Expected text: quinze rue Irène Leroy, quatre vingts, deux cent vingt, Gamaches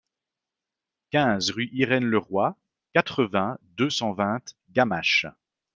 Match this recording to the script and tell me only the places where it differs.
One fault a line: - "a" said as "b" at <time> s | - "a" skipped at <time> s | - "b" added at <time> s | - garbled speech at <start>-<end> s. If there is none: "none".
none